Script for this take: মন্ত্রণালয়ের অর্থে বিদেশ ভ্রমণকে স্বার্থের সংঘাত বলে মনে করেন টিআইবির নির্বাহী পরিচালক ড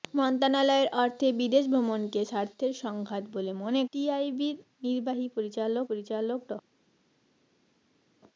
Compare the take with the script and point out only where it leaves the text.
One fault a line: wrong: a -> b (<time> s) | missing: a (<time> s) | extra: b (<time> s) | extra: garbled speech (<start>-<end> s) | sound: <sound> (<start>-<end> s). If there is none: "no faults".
missing: করেন (3.8 s)
extra: পরিচালক (5.9 s)